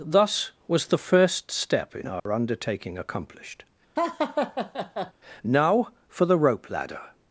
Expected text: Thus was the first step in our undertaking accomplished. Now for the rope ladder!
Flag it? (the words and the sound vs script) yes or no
yes